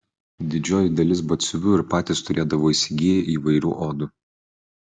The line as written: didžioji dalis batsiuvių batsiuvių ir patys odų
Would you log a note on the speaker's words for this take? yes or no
yes